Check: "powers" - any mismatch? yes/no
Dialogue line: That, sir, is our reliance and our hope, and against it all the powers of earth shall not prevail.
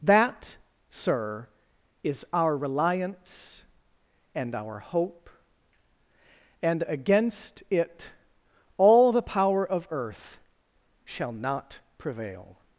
yes